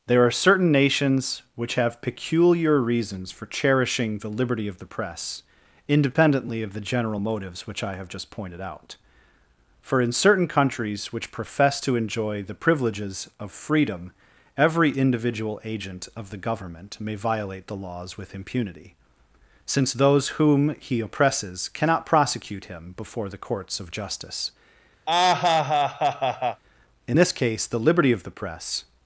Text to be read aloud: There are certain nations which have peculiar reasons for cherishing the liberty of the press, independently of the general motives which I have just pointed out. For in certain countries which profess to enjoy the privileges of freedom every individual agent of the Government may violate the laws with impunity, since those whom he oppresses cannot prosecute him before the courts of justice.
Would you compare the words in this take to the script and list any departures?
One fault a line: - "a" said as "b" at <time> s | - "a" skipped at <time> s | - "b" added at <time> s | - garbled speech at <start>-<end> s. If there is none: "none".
- "In this case the liberty of the press" added at 27.1 s